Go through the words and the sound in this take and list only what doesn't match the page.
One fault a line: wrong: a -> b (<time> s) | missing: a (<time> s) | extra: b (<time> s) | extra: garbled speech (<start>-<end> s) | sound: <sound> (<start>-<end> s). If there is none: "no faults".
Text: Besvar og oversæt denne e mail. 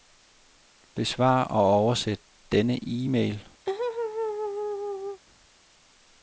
sound: laugh (3.7-5.2 s)